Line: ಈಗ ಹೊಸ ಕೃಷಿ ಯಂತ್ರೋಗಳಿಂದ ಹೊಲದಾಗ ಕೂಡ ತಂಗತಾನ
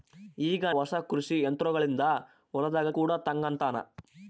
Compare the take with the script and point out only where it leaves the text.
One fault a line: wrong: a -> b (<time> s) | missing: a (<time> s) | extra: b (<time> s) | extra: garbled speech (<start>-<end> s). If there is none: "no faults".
no faults